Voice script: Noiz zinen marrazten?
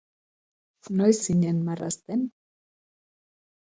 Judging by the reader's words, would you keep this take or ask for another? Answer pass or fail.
pass